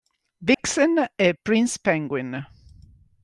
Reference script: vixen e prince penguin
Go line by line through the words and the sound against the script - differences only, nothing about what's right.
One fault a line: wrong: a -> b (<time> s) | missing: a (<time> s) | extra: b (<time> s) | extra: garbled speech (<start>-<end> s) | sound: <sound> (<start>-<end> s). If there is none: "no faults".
sound: dropout (0.5-0.6 s)